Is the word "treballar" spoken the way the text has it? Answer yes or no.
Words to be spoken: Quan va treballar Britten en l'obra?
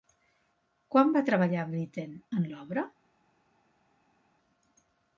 yes